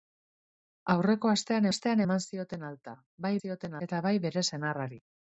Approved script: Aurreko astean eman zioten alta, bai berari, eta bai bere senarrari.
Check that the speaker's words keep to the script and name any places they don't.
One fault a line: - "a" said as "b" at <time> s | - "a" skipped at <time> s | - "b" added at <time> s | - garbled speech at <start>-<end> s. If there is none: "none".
- "astean" added at 1.7 s
- "berari" said as "zioten" at 3.4 s